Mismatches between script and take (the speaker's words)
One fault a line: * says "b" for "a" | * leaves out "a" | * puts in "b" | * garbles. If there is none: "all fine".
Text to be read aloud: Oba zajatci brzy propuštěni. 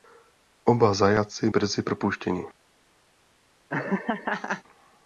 all fine